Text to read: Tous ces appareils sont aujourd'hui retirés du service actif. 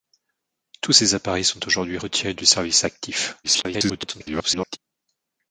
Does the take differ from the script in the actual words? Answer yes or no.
yes